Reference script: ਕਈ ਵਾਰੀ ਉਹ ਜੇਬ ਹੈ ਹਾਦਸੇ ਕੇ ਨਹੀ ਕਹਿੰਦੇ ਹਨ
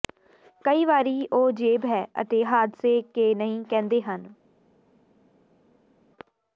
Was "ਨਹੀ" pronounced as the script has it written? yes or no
yes